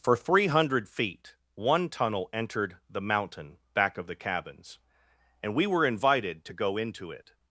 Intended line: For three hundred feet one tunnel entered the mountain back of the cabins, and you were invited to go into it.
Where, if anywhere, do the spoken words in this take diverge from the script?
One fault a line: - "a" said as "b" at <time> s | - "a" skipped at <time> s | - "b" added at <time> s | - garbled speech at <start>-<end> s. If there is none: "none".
- "you" said as "we" at 5.5 s